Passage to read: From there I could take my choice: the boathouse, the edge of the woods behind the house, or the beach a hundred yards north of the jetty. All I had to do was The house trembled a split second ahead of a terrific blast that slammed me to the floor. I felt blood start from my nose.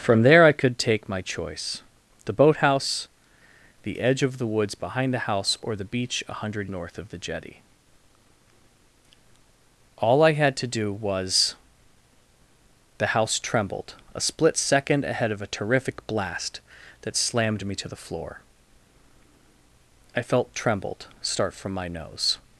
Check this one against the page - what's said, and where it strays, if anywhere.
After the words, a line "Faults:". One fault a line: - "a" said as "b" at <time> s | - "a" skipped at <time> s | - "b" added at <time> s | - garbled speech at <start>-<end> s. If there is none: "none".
From there I could take my choice: the boathouse, the edge of the woods behind the house, or the beach a hundred north of the jetty. All I had to do was The house trembled a split second ahead of a terrific blast that slammed me to the floor. I felt trembled start from my nose.
Faults:
- "yards" skipped at 6.7 s
- "blood" said as "trembled" at 20.5 s